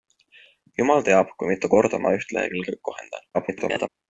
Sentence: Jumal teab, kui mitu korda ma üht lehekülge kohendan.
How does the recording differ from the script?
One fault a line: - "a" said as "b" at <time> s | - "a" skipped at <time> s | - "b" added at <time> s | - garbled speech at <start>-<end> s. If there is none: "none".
- garbled speech at 3.3-3.9 s